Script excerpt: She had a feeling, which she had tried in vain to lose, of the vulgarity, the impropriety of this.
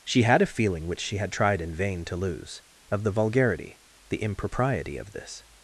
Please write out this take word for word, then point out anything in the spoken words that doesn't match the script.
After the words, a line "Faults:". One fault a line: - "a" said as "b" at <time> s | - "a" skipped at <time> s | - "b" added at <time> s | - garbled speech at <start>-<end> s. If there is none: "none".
She had a feeling, which she had tried in vain to lose, of the vulgarity, the impropriety of this.
Faults:
none